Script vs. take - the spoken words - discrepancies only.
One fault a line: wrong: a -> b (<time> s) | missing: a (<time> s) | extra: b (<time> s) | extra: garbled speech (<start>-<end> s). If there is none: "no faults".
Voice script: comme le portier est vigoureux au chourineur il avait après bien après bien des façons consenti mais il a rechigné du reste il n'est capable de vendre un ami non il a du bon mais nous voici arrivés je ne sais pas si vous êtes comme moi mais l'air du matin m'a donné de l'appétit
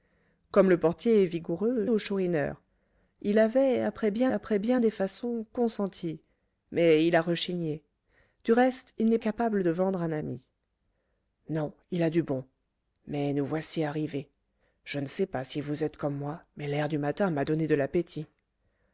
no faults